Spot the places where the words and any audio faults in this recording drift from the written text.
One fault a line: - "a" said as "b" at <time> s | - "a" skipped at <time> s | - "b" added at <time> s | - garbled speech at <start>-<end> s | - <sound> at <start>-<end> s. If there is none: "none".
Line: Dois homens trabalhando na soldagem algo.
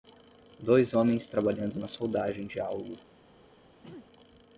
- "de" added at 2.5 s
- throat clearing at 3.8-4.1 s